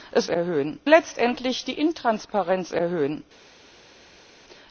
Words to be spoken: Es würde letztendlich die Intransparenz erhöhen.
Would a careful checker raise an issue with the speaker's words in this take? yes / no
yes